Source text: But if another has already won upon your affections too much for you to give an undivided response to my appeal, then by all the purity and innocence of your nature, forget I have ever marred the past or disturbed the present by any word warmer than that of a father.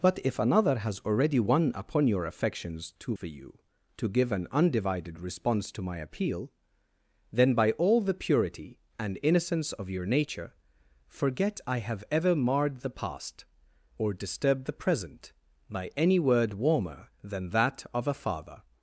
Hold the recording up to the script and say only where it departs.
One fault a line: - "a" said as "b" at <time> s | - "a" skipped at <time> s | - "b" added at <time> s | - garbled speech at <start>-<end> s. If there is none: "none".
- "much" skipped at 3.1 s